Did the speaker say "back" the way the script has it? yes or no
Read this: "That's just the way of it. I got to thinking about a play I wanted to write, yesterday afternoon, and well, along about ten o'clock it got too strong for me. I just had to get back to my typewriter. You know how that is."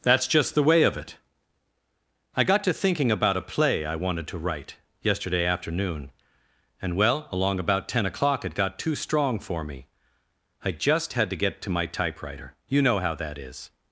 no